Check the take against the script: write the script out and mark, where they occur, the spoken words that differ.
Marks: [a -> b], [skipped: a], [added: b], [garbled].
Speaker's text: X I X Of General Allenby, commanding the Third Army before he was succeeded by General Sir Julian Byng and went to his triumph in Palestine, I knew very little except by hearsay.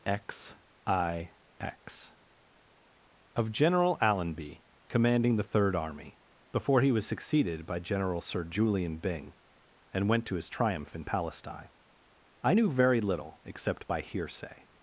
X I X Of General Allenby, commanding the Third Army before he was succeeded by General Sir Julian Byng and went to his triumph in Palestine, I knew very little except by hearsay.